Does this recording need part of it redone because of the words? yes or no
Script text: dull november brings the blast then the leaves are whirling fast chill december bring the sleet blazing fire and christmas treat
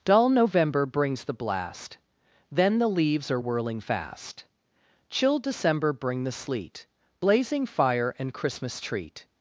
no